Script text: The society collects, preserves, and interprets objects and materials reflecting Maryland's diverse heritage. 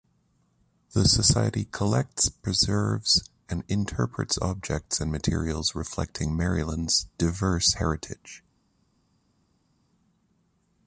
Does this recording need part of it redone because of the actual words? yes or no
no